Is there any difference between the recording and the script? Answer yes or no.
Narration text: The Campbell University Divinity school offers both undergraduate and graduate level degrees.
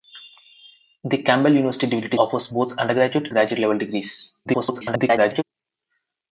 yes